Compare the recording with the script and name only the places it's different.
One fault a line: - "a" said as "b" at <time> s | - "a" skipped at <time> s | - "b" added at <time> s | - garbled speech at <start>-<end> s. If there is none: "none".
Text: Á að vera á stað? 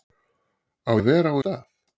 none